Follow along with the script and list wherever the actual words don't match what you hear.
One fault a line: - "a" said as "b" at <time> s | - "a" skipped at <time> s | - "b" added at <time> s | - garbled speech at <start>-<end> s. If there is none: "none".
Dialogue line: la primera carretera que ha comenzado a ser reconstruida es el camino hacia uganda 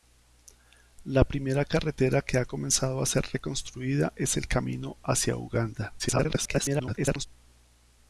- garbled speech at 6.0-7.3 s